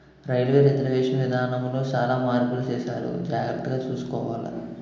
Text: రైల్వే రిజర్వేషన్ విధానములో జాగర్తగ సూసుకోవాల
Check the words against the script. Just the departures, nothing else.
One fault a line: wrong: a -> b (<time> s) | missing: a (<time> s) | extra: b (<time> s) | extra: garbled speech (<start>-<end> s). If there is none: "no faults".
extra: సాలా మార్పులు సేసారు (1.8 s)